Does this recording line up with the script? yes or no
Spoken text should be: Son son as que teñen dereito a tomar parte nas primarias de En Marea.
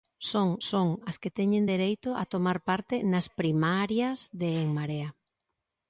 yes